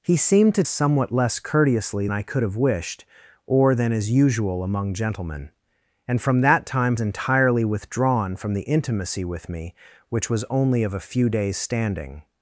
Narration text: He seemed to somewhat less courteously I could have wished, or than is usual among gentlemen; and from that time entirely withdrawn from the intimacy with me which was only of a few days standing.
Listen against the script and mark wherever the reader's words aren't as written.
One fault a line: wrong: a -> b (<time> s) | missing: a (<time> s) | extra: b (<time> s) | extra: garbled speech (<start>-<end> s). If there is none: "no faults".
no faults